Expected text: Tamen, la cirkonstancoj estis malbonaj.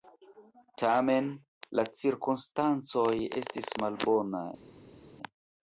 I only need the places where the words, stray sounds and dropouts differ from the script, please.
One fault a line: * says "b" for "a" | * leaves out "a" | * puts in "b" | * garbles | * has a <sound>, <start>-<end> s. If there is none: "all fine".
all fine